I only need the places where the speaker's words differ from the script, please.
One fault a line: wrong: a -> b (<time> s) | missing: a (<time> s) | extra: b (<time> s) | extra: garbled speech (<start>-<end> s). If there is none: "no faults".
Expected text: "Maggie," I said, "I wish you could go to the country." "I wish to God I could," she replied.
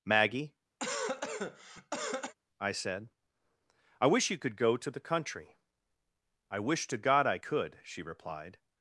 no faults